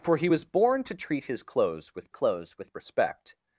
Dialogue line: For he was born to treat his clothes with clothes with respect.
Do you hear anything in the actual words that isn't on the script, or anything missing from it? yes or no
no